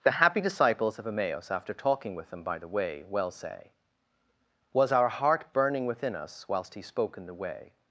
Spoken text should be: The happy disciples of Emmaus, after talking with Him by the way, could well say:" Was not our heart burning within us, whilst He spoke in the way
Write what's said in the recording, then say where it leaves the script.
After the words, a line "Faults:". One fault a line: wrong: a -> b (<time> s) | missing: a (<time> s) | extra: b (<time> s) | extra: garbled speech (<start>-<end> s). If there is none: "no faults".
The happy disciples of Emmaus, after talking with Him by the way, well say:" Was our heart burning within us, whilst He spoke in the way
Faults:
missing: could (3.0 s)
missing: not (4.9 s)